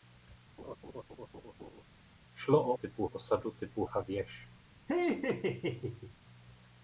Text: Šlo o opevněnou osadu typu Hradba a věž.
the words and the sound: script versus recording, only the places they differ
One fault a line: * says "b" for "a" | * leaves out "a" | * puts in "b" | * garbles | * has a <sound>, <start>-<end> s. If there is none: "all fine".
* has a laugh, 0.6-1.8 s
* says "typu" for "opevněnou"
* leaves out "Hradba"
* has a laugh, 4.9-6.1 s